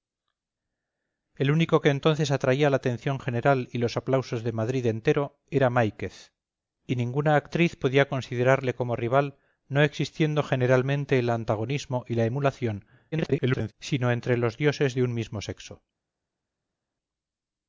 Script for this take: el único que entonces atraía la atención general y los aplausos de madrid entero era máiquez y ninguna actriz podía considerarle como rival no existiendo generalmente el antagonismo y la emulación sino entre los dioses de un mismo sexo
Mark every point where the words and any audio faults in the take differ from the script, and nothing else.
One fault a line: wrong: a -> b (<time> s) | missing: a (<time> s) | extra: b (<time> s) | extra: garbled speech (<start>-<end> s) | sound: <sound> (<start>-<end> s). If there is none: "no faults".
extra: garbled speech (13.1-13.7 s)